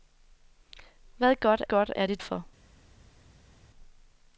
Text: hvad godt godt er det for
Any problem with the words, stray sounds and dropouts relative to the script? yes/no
no